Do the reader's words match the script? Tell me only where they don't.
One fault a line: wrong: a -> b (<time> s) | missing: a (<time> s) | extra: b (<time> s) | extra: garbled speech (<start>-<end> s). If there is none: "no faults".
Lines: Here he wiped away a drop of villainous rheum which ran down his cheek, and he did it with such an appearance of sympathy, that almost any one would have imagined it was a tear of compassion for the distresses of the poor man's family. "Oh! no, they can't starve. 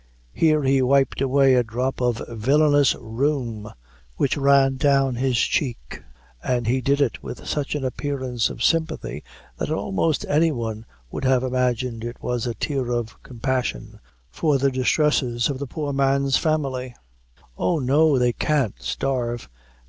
no faults